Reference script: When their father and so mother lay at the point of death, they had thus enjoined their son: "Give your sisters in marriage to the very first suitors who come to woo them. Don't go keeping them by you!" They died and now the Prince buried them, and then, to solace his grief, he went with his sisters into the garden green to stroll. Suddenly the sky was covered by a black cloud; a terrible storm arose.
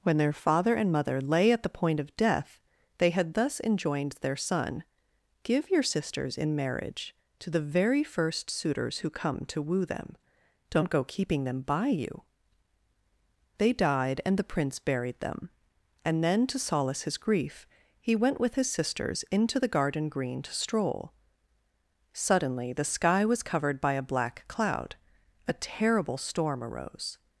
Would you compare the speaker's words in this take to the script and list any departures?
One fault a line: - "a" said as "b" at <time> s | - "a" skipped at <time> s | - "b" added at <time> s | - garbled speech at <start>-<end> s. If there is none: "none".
- "so" skipped at 0.9 s
- "now" skipped at 14.4 s